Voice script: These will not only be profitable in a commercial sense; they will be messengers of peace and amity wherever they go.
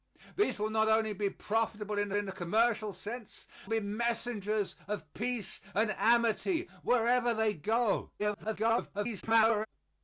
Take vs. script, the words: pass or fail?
fail